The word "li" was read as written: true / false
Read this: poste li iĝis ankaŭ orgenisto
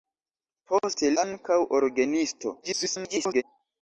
false